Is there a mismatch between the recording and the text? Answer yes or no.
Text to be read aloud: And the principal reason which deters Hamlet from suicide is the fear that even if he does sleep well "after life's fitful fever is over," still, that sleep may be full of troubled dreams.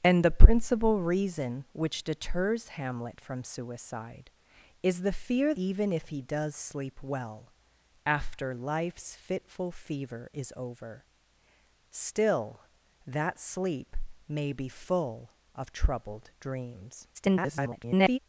yes